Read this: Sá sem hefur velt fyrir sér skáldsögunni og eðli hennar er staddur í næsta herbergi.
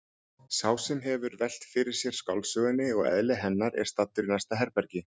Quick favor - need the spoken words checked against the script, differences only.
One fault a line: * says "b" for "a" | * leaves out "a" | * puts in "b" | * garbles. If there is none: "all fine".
all fine